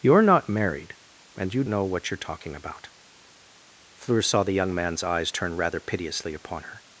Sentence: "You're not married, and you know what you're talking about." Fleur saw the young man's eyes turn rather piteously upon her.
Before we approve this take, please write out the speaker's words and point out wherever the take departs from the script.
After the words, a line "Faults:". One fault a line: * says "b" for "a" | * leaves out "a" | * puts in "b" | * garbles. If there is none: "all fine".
"You're not married, and you know what you're talking about." Fleur saw the young man's eyes turn rather piteously upon her.
Faults:
all fine